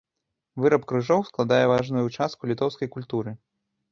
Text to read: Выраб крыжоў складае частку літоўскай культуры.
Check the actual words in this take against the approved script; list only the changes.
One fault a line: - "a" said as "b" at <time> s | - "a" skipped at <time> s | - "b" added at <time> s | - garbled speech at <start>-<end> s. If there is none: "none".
- "важную" added at 1.7 s